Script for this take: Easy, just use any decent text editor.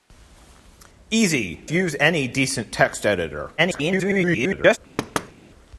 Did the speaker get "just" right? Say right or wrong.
wrong